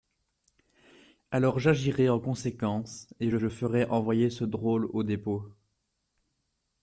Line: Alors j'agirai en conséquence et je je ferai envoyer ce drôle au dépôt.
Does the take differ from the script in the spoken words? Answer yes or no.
no